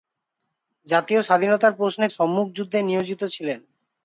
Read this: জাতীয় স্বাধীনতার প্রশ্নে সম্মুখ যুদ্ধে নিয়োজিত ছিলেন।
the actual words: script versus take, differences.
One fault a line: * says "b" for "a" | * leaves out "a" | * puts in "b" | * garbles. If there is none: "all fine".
all fine